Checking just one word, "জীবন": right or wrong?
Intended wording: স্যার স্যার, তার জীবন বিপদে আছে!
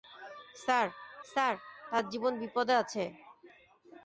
right